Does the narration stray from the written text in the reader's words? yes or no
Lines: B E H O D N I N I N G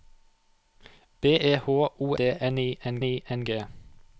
no